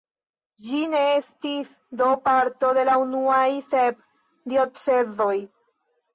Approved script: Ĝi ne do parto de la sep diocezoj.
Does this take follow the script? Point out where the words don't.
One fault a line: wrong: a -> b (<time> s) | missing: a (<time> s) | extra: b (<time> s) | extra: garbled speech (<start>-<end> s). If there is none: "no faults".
extra: estis (1.2 s)
extra: unuaj (3.0 s)